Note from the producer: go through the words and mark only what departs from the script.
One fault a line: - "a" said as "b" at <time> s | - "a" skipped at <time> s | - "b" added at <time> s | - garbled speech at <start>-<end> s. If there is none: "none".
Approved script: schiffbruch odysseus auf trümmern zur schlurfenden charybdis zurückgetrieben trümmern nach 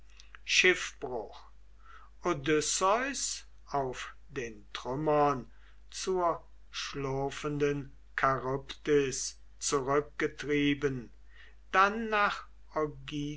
- "den" added at 4.3 s
- "trümmern" said as "dann" at 11.7 s